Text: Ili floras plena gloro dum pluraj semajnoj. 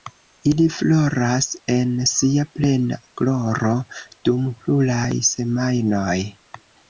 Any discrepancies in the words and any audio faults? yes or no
yes